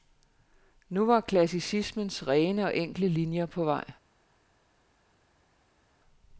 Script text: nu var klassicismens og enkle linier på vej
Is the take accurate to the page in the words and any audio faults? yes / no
no